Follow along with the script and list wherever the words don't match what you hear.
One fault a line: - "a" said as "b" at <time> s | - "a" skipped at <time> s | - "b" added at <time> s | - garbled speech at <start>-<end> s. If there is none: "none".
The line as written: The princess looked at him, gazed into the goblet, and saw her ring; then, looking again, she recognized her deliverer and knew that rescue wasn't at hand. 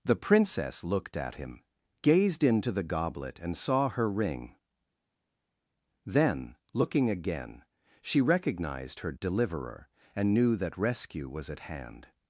- "wasn't" said as "was" at 11.3 s